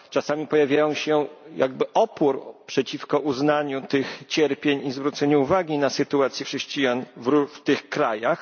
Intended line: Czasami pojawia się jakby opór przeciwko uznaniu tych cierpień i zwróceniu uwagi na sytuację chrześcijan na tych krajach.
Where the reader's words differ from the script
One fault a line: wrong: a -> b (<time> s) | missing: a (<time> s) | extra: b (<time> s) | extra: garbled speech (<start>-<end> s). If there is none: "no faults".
wrong: na -> w (7.2 s)